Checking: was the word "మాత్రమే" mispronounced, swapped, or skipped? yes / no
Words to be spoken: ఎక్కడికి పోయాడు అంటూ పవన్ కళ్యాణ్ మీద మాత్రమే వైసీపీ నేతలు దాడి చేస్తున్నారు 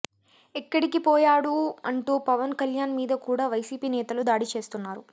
yes